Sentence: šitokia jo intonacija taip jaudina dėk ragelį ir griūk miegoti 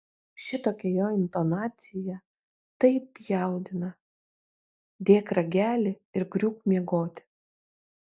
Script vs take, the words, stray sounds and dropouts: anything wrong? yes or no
no